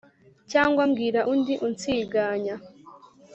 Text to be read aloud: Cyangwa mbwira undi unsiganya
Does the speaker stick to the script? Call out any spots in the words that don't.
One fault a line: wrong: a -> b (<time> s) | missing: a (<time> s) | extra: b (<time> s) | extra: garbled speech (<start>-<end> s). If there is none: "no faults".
no faults